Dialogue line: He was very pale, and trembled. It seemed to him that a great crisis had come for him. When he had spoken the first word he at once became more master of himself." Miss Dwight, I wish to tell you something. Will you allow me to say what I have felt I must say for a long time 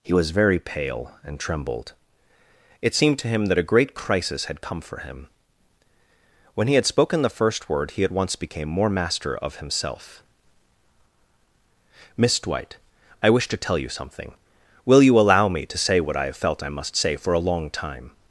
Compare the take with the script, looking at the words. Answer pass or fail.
pass